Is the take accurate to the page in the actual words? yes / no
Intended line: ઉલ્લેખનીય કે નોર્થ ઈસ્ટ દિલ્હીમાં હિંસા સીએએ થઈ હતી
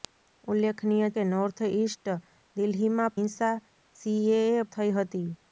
yes